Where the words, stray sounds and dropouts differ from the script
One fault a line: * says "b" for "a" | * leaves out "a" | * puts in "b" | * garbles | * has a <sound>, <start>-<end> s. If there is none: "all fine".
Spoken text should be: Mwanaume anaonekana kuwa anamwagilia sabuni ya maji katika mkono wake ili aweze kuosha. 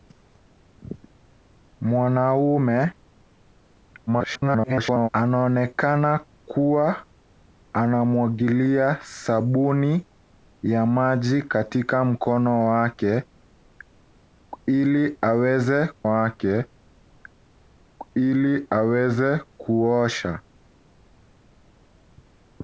* garbles
* puts in "wake ili aweze"